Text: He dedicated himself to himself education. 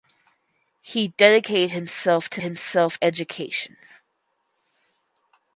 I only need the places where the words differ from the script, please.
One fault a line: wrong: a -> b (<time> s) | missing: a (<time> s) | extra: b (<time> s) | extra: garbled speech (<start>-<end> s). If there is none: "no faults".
no faults